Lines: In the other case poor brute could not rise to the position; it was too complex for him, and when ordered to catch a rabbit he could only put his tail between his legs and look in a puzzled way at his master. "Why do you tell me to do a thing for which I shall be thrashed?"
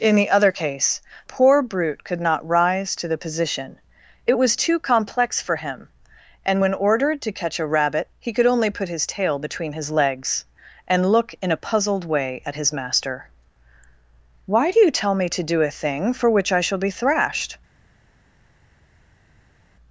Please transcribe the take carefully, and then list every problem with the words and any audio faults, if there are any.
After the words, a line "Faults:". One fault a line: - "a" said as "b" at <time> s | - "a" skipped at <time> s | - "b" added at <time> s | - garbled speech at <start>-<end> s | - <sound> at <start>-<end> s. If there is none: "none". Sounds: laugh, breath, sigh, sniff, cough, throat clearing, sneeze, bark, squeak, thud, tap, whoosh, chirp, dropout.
In the other case poor brute could not rise to the position; it was too complex for him, and when ordered to catch a rabbit he could only put his tail between his legs and look in a puzzled way at his master. "Why do you tell me to do a thing for which I shall be thrashed?"
Faults:
none